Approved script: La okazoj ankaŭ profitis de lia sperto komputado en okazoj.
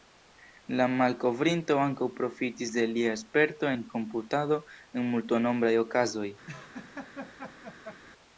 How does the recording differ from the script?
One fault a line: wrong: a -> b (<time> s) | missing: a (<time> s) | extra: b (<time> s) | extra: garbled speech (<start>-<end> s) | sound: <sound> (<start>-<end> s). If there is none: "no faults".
wrong: okazoj -> malkovrinto (0.9 s)
extra: en (3.7 s)
extra: multnombraj (5.2 s)
sound: laugh (6.5-8.0 s)